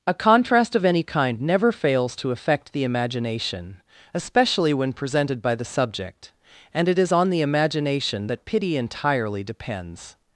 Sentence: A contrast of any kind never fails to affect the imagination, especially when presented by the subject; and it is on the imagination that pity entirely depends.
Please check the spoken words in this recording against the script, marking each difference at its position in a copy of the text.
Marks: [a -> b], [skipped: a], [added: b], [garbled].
A contrast of any kind never fails to affect the imagination, especially when presented by the subject; and it is on the imagination that pity entirely depends.